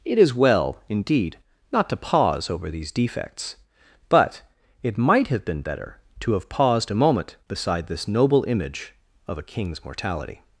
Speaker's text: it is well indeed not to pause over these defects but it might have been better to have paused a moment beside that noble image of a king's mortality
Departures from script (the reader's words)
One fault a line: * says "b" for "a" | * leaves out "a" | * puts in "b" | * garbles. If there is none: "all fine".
* says "this" for "that"